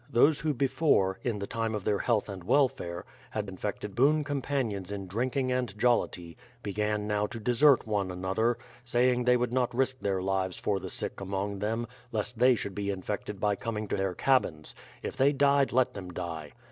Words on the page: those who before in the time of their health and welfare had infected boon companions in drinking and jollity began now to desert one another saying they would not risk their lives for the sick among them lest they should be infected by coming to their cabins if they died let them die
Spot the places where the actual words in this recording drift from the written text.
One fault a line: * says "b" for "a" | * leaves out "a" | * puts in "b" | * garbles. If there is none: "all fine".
all fine